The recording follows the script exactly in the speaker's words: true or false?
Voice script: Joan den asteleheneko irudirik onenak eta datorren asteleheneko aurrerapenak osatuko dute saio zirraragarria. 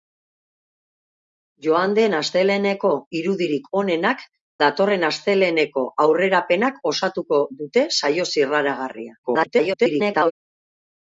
false